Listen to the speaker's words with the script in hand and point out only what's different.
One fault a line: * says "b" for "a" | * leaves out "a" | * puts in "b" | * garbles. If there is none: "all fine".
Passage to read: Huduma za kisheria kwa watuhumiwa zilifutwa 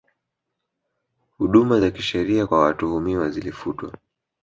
all fine